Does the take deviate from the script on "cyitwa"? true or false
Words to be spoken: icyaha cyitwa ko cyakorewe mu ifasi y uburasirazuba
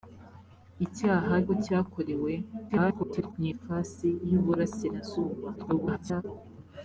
true